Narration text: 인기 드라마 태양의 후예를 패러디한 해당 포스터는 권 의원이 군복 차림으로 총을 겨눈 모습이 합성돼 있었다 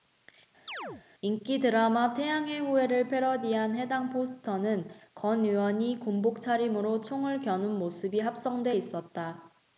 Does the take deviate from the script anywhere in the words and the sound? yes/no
yes